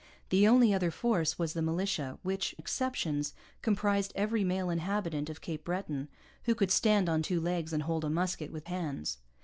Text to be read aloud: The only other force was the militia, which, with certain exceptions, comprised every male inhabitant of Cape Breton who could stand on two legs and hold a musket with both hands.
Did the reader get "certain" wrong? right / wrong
wrong